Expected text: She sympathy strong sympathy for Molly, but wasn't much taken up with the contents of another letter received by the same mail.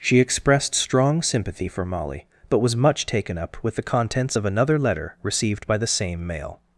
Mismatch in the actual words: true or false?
true